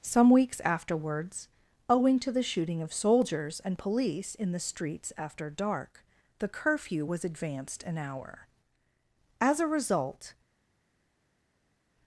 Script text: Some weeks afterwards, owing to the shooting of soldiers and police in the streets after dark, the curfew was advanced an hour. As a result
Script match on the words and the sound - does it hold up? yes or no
yes